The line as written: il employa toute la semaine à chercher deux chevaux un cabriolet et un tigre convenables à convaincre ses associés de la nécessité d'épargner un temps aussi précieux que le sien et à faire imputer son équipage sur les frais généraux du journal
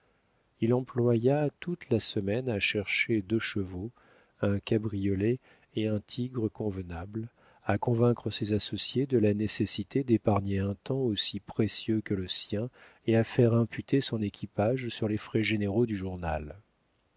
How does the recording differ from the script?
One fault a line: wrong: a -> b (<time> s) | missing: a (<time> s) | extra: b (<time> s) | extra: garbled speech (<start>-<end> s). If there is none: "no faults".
no faults